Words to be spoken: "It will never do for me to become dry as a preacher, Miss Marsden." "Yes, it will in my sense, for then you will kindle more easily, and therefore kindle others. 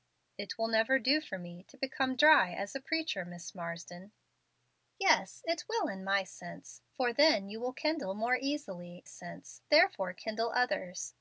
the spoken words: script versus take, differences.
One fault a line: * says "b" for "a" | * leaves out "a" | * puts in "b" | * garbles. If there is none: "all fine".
* says "sense" for "and"